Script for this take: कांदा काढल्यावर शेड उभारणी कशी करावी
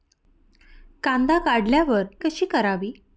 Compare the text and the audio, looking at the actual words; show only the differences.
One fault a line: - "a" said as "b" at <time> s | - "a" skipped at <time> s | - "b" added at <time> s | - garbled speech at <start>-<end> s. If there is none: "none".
- "शेड उभारणी" skipped at 2.0 s